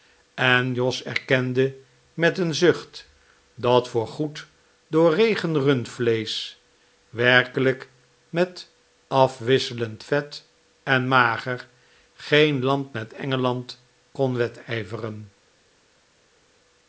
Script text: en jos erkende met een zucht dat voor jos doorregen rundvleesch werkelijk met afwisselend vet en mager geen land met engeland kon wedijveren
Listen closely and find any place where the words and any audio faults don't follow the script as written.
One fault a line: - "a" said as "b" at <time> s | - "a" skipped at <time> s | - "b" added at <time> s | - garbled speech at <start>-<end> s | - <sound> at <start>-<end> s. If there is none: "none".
- "jos" said as "goed" at 4.1 s